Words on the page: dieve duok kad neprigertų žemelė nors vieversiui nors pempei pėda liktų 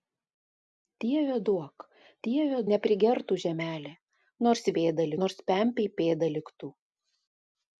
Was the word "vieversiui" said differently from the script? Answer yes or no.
yes